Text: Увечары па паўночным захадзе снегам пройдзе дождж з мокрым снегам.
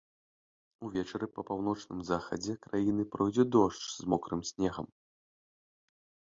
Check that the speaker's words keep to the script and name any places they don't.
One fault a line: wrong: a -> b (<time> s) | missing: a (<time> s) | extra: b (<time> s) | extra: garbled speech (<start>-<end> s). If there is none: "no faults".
wrong: снегам -> краіны (2.7 s)